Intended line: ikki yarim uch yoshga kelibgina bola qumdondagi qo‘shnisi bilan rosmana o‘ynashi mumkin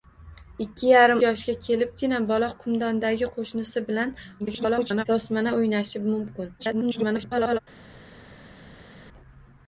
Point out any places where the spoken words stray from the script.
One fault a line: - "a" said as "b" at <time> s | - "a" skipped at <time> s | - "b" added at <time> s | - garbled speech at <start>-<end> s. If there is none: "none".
- "uch" skipped at 1.2 s
- garbled speech at 4.4-5.0 s
- garbled speech at 6.6-7.6 s